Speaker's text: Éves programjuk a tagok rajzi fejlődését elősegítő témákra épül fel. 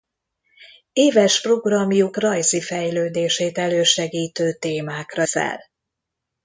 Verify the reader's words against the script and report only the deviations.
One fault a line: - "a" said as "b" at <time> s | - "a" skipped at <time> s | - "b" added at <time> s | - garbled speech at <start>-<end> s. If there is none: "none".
- "a tagok" skipped at 2.2 s
- "épül" skipped at 5.3 s